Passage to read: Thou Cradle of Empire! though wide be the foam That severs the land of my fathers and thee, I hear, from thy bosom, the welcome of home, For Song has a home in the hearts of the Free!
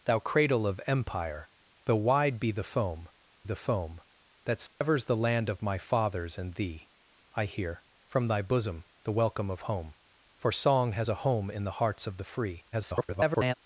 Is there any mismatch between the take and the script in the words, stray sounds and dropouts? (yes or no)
yes